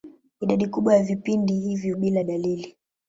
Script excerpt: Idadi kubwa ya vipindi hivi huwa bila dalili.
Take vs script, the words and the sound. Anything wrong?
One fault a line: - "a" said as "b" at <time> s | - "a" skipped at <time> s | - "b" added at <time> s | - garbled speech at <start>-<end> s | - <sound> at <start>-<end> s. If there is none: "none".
- "huwa" skipped at 1.9 s